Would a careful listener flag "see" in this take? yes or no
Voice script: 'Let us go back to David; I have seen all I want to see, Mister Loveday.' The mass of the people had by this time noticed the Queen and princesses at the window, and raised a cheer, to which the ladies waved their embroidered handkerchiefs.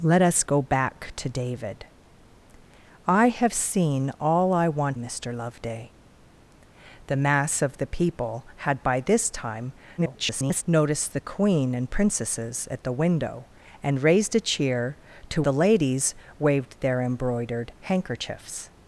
yes